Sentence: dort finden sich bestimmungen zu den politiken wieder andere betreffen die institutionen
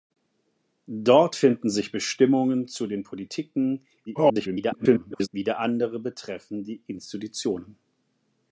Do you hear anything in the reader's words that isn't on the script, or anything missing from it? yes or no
yes